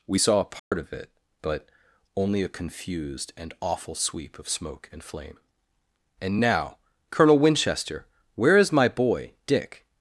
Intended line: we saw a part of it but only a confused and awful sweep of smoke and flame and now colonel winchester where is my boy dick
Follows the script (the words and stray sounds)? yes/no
no